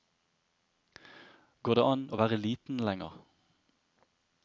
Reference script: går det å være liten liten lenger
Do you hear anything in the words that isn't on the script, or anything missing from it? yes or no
yes